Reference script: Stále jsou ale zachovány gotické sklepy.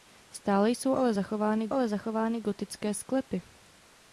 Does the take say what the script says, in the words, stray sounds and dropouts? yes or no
no